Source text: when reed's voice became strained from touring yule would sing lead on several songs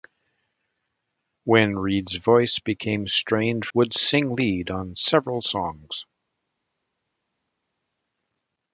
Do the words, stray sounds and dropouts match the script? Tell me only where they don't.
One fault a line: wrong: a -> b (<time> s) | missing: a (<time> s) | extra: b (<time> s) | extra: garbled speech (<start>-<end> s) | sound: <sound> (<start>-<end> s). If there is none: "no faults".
missing: from touring yule (3.7 s)